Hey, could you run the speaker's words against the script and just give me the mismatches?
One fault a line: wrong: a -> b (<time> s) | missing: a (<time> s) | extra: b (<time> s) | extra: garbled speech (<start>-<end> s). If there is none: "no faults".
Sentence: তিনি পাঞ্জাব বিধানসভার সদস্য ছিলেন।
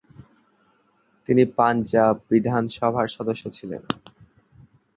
no faults